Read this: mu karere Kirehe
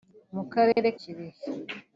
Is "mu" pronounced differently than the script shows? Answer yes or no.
no